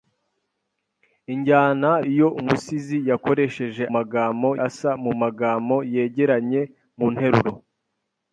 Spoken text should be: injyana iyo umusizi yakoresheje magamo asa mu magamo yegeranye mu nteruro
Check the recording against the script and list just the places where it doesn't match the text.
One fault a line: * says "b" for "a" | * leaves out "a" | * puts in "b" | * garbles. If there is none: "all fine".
all fine